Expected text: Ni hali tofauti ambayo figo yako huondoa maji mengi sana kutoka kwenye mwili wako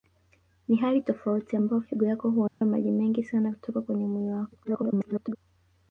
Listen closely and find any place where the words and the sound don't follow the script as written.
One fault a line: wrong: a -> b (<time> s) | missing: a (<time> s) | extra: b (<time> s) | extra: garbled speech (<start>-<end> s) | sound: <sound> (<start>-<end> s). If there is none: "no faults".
sound: dropout (2.5-2.6 s)
extra: garbled speech (4.6-5.4 s)